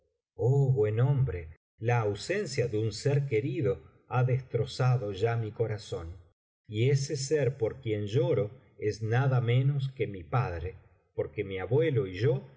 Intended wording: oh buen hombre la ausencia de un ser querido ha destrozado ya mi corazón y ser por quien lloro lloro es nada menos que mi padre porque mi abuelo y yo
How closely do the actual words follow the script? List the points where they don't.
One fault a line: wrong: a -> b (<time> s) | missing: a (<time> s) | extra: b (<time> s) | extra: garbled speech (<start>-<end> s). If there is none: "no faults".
extra: ese (6.9 s)
missing: lloro (8.5 s)